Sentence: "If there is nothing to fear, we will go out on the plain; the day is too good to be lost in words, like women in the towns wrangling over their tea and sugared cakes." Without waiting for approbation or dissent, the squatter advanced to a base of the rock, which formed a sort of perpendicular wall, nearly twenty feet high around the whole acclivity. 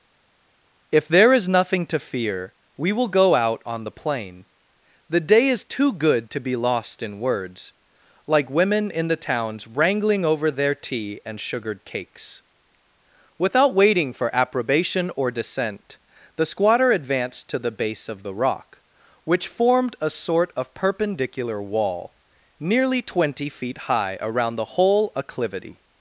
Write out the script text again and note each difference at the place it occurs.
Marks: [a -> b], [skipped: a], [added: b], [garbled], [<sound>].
"If there is nothing to fear, we will go out on the plain; the day is too good to be lost in words, like women in the towns wrangling over their tea and sugared cakes." Without waiting for approbation or dissent, the squatter advanced to [a -> the] base of the rock, which formed a sort of perpendicular wall, nearly twenty feet high around the whole acclivity.